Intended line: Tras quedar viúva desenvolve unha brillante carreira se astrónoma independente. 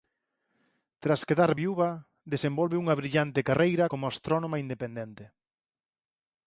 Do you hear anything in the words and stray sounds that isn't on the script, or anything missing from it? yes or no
yes